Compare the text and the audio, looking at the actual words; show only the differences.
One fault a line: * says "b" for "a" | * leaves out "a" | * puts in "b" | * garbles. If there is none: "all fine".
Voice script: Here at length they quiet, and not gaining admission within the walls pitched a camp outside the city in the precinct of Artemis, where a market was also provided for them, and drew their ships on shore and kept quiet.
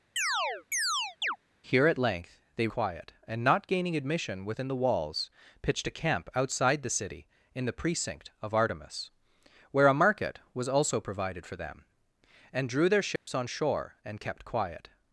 all fine